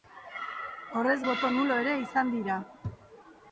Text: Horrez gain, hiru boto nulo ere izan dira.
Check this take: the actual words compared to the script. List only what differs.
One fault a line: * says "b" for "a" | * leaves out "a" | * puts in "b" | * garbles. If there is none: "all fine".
* leaves out "gain hiru"